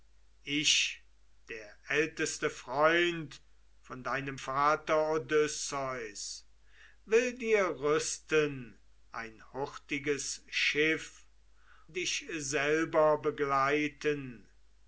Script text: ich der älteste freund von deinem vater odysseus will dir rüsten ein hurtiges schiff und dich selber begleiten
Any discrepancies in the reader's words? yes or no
yes